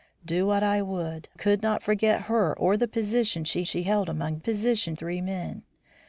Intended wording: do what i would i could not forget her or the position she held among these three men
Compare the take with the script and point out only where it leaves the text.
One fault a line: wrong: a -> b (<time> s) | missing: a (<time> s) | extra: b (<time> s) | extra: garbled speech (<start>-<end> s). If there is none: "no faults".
missing: i (1.3 s)
extra: she (3.7 s)
wrong: these -> position (4.4 s)